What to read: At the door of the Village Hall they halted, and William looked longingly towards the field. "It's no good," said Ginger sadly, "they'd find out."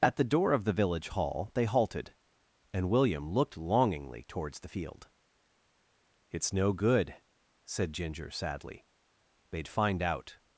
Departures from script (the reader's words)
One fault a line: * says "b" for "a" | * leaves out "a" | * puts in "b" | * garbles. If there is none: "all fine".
all fine